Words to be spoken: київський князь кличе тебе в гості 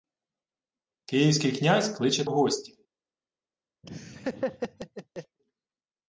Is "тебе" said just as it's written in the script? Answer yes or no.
no